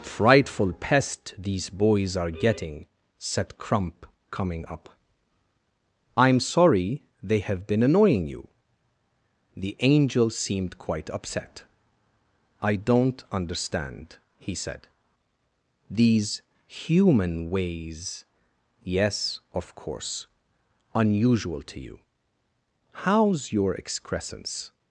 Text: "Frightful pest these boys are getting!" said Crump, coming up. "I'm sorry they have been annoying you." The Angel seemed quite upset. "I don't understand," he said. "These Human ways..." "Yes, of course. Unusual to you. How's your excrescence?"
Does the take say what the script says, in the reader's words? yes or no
yes